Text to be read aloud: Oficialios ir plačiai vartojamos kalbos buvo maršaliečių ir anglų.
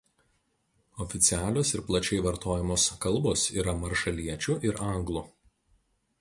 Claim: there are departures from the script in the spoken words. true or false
true